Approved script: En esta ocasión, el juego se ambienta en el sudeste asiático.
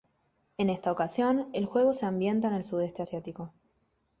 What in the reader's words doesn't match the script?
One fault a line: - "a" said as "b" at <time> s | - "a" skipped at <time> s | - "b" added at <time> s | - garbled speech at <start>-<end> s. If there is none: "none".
none